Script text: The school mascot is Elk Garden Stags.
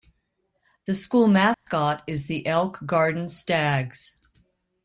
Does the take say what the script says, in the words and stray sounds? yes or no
no